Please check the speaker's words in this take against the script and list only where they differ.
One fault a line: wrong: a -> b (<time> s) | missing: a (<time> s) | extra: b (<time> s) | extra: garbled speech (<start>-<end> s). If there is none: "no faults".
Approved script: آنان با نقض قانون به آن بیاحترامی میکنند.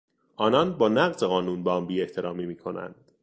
no faults